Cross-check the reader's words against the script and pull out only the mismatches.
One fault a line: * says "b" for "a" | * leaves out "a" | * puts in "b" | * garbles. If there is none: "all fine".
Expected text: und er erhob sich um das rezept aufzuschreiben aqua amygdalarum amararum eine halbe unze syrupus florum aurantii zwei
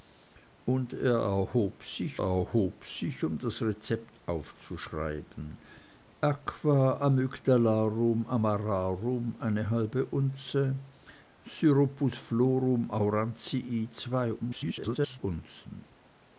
* puts in "erhob sich"
* garbles